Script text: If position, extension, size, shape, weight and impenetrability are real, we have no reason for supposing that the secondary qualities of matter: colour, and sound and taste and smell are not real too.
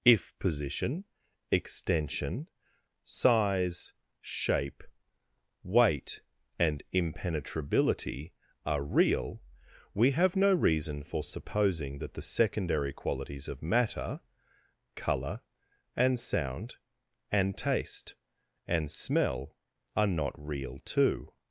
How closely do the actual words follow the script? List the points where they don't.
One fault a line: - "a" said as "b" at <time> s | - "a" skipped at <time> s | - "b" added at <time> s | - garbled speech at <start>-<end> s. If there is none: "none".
none